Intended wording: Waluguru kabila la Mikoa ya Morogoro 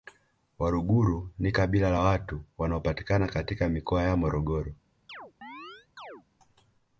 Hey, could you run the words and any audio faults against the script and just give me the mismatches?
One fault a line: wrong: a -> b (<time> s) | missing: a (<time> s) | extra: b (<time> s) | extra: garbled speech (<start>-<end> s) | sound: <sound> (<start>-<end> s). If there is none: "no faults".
extra: ni (1.4 s)
extra: watu wanaopatikana katika (2.0 s)
sound: chirp (5.1-6.2 s)